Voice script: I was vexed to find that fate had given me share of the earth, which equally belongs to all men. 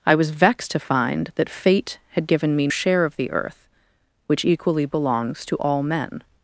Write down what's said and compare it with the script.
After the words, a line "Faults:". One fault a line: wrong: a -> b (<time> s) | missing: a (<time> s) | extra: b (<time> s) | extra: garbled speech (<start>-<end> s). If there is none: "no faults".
I was vexed to find that fate had given me share of the earth, which equally belongs to all men.
Faults:
no faults